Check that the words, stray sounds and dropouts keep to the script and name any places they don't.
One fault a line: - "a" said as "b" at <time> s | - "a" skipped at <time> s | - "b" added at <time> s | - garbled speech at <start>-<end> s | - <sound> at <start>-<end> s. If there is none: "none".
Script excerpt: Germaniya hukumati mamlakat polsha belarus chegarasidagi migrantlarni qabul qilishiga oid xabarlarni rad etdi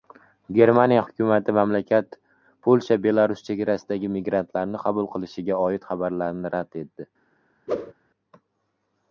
- whoosh at 7.7-7.9 s